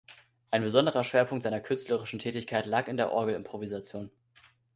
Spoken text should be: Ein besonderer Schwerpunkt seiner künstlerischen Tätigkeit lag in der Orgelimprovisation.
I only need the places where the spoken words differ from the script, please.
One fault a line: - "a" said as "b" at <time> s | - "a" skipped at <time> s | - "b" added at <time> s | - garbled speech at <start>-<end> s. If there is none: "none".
none